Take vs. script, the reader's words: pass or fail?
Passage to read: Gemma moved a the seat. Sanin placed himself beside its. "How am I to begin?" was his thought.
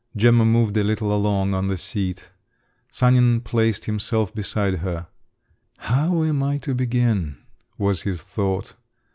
fail